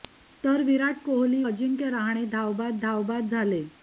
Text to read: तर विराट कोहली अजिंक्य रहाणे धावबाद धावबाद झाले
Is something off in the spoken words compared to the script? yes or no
no